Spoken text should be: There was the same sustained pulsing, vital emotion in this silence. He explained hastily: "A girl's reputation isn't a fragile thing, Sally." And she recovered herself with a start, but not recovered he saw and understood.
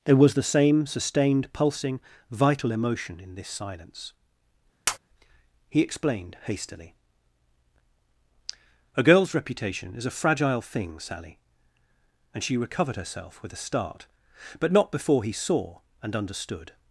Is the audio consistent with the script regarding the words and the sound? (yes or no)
no